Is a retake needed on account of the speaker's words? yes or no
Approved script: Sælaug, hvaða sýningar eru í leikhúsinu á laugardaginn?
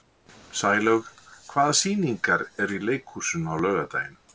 no